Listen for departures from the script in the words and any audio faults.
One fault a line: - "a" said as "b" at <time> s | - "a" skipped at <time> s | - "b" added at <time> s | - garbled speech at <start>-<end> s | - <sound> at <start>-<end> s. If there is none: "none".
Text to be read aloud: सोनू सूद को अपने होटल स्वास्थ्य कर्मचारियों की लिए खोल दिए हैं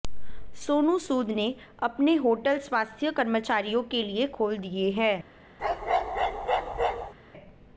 - "को" said as "ने" at 1.3 s
- "की" said as "के" at 3.9 s
- bark at 5.6-7.1 s